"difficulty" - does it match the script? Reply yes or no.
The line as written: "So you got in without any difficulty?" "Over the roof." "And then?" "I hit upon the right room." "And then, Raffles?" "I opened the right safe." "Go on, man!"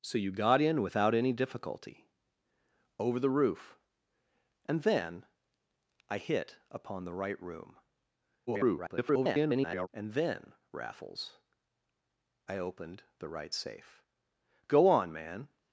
yes